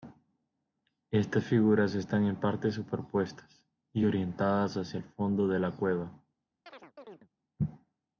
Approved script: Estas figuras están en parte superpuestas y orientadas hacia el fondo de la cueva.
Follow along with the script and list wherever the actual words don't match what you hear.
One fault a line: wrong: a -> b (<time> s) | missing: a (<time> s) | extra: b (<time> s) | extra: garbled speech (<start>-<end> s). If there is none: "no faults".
no faults